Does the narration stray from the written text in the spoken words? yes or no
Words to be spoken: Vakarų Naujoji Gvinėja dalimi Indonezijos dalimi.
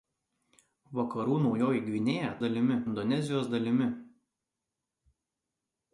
no